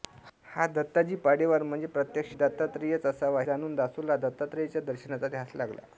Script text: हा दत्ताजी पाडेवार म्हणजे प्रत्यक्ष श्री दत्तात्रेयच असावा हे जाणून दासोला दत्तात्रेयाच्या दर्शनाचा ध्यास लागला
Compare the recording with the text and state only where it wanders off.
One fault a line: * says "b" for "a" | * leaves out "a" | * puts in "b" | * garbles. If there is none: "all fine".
* leaves out "श्री"
* leaves out "हे"